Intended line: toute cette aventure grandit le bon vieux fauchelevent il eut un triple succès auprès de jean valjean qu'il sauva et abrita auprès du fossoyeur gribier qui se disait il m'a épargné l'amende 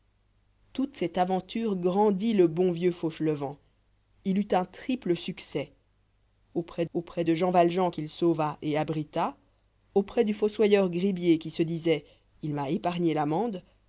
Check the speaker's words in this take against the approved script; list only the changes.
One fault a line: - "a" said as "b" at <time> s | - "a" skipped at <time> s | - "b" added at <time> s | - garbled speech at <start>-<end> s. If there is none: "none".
- "auprès" added at 6.9 s